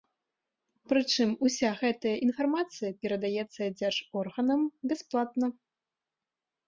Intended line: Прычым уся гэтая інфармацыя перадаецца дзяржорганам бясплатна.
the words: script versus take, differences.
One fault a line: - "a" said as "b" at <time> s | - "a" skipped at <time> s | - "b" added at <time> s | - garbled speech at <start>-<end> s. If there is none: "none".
none